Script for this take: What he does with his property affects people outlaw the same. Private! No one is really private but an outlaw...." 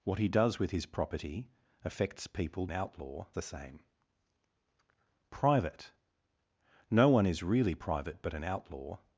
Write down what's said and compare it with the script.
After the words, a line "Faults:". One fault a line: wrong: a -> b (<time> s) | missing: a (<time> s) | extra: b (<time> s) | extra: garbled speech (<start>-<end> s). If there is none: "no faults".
What he does with his property affects people outlaw the same. Private! No one is really private but an outlaw...."
Faults:
no faults